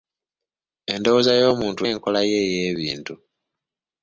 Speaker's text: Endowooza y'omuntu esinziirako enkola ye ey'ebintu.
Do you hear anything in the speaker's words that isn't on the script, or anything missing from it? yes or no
yes